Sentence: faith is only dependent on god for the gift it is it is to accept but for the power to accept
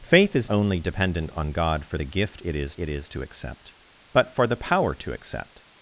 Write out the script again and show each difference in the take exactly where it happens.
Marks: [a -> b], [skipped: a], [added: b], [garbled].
faith is only dependent on god for the gift it is it is to accept but for the power to accept